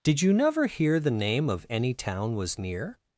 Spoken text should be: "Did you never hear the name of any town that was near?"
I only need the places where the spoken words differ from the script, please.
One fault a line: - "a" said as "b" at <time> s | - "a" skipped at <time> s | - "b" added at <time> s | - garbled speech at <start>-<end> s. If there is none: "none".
- "that" skipped at 2.3 s